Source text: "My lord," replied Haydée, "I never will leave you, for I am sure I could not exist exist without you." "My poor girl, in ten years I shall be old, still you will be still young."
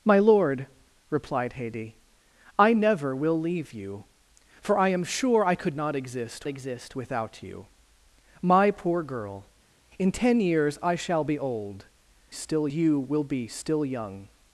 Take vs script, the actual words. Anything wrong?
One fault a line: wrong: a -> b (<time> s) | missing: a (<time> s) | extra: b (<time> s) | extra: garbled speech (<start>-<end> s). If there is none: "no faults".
no faults